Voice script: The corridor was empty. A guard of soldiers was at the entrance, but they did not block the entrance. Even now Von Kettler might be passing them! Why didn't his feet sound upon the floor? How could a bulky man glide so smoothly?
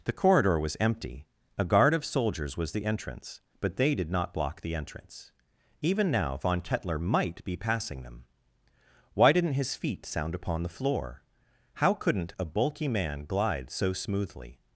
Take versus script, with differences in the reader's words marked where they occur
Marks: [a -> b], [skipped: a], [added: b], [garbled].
The corridor was empty. A guard of soldiers was [skipped: at] the entrance, but they did not block the entrance. Even now Von Kettler might be passing them! Why didn't his feet sound upon the floor? How [could -> couldn't] a bulky man glide so smoothly?